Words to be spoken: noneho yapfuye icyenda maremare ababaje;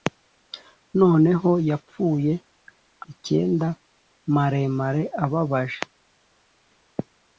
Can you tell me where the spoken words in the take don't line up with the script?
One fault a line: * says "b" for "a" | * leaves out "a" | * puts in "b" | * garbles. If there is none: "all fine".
all fine